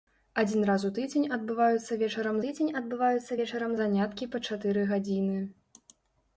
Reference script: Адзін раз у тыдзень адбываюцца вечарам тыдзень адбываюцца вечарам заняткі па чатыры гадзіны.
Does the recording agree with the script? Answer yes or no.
yes